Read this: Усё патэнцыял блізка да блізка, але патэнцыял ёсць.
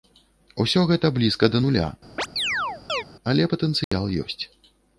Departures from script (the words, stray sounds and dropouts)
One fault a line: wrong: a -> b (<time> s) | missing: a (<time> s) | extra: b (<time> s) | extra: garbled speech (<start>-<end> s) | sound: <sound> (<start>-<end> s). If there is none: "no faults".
wrong: патэнцыял -> гэта (0.9 s)
wrong: блізка -> нуля (1.6 s)
sound: chirp (2.2-3.0 s)
sound: dropout (3.8-3.9 s)